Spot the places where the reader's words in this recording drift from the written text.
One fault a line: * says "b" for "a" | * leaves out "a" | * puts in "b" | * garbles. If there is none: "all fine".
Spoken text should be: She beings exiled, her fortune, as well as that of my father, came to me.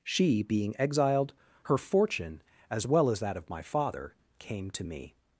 * says "being" for "beings"